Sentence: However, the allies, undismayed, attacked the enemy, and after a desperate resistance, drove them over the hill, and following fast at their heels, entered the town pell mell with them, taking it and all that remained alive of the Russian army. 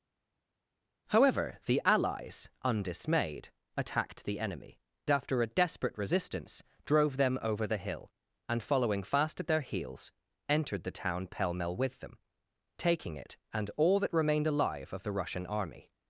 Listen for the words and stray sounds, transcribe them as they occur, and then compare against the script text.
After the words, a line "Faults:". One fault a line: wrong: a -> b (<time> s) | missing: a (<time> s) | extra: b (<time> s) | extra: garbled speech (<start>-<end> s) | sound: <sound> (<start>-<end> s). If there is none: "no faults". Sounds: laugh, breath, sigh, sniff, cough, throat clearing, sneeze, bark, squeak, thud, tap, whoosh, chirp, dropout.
However, the allies, undismayed, attacked the enemy, after a desperate resistance, drove them over the hill, and following fast at their heels, entered the town pell mell with them, taking it and all that remained alive of the Russian army.
Faults:
missing: and (4.8 s)